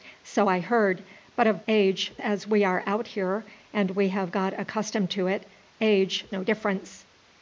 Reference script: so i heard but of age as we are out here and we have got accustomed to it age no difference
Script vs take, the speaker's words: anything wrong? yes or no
no